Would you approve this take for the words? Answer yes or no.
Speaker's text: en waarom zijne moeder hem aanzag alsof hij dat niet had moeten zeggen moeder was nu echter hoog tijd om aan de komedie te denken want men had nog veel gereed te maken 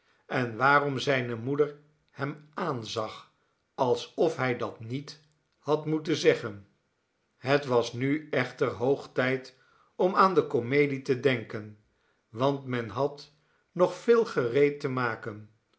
no